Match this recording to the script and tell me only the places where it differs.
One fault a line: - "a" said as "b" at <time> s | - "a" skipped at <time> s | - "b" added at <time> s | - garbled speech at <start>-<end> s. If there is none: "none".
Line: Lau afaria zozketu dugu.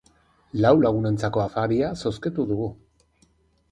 - "lagunentzako" added at 0.8 s